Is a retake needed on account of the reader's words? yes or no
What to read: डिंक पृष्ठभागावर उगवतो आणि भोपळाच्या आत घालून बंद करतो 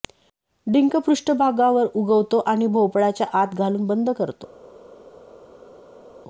no